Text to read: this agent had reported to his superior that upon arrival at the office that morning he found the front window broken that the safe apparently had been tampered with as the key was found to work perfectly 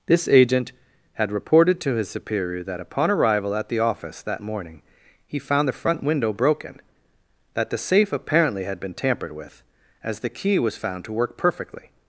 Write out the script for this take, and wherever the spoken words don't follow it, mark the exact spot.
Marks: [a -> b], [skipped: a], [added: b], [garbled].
this agent had reported to his superior that upon arrival at the office that morning he found the front window broken that the safe apparently had been tampered with as the key was found to work perfectly